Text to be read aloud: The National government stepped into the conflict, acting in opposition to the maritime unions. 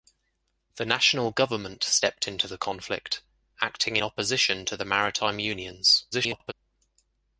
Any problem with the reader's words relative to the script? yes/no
yes